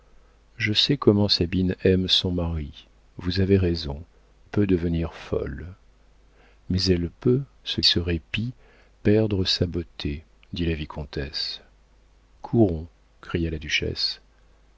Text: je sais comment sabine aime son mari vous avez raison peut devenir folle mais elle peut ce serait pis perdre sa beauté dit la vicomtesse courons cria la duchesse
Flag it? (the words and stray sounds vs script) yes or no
no